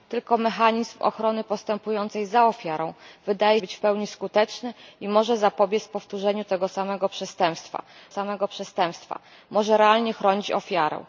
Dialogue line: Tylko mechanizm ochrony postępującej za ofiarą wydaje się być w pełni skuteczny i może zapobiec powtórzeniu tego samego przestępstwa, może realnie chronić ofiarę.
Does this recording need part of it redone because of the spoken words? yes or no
yes